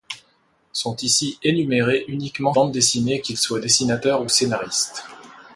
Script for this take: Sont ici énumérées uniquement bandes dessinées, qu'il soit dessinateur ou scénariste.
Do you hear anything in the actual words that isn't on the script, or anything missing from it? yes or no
no